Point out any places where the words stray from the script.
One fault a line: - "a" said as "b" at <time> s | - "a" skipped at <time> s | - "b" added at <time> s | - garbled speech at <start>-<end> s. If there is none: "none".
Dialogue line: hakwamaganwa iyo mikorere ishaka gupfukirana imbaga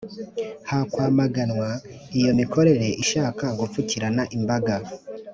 none